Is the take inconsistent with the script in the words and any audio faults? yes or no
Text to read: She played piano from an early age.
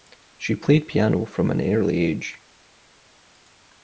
no